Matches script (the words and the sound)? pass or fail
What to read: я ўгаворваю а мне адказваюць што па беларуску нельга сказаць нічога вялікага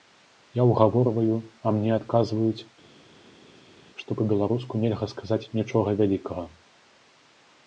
pass